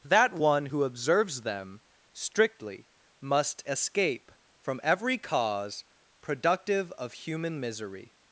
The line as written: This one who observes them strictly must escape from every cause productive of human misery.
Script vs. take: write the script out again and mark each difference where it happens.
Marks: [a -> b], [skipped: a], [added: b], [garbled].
[This -> That] one who observes them strictly must escape from every cause productive of human misery.